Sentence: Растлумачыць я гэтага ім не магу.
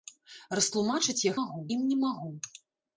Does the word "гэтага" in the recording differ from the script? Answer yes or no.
yes